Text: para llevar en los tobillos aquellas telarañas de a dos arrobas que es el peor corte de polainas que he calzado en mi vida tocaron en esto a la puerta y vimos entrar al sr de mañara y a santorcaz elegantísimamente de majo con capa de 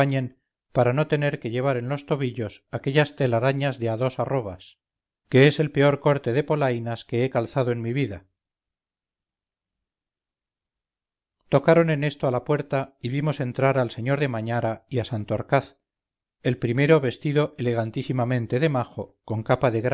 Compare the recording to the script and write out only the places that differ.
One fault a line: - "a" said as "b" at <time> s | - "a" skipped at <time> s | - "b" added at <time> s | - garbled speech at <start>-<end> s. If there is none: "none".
- "no tener que" added at 0.9 s
- "el primero vestido" added at 16.4 s